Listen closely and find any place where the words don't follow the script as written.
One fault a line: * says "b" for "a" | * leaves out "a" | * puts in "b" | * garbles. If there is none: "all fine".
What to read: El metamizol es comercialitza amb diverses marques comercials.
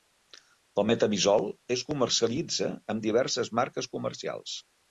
all fine